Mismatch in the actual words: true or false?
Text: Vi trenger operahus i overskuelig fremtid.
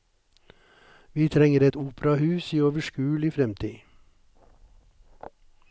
true